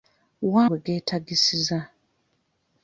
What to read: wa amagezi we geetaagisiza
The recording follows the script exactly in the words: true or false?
false